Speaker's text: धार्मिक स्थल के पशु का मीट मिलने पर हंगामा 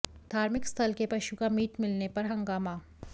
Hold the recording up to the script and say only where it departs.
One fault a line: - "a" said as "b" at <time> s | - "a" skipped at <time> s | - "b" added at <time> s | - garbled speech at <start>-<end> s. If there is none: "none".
none